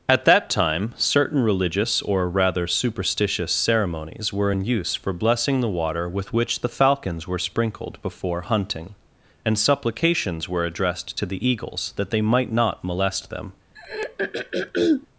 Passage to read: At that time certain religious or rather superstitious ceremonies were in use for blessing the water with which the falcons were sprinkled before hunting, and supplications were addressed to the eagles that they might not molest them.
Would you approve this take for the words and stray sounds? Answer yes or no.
no